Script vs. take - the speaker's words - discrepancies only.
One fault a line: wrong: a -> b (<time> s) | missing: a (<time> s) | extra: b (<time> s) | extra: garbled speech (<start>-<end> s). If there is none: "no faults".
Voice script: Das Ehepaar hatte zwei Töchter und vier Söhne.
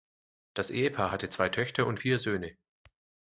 no faults